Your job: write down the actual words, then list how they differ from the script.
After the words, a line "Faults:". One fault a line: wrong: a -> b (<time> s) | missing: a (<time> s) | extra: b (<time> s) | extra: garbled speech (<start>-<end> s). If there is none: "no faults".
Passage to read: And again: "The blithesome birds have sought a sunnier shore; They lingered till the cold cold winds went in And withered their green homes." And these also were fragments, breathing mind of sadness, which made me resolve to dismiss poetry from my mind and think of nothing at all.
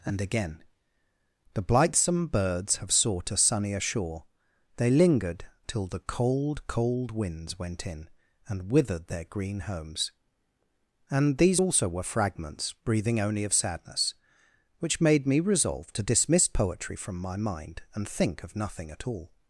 And again: "The blithesome birds have sought a sunnier shore; They lingered till the cold cold winds went in And withered their green homes." And these also were fragments, breathing only of sadness, which made me resolve to dismiss poetry from my mind and think of nothing at all.
Faults:
wrong: mind -> only (13.2 s)